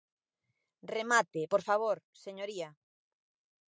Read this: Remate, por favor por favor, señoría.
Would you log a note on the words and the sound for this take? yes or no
yes